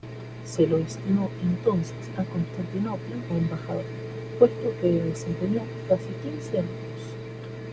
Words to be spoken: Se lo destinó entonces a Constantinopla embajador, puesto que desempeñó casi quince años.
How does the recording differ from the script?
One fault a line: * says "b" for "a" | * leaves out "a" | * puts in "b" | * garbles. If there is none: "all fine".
all fine